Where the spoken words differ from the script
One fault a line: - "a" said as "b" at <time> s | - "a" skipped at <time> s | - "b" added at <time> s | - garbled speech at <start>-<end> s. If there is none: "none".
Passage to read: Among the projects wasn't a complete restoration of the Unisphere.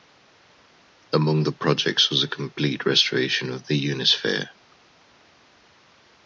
- "wasn't" said as "was" at 2.1 s